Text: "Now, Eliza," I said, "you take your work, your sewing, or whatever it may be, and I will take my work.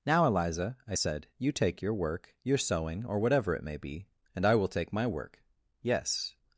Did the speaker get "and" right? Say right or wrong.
right